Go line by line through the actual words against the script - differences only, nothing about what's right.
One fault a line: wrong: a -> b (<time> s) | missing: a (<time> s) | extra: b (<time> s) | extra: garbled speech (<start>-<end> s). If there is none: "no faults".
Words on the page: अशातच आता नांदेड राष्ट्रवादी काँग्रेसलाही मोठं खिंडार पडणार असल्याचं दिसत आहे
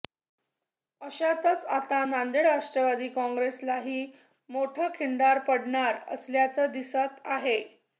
no faults